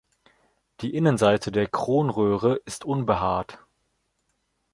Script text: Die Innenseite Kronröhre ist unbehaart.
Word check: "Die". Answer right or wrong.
right